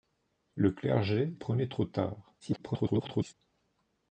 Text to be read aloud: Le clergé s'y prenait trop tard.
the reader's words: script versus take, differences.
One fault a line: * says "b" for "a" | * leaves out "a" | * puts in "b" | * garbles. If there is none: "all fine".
* leaves out "s'y"
* garbles